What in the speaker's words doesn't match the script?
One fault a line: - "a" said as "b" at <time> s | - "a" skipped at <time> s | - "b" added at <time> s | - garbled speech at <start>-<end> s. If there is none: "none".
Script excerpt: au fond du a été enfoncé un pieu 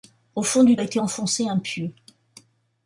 none